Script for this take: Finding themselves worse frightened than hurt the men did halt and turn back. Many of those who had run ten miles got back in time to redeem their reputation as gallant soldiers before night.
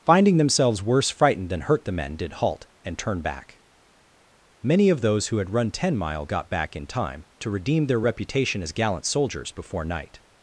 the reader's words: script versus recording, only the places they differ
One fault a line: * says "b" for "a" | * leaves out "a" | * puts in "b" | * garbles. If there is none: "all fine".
* says "mile" for "miles"